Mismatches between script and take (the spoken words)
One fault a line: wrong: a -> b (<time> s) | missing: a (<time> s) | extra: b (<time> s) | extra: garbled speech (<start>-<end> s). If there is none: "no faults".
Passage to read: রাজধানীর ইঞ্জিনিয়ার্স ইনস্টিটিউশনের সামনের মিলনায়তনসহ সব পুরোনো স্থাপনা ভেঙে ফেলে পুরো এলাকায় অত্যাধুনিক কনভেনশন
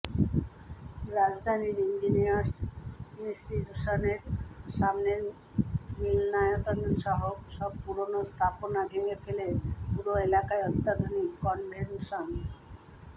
no faults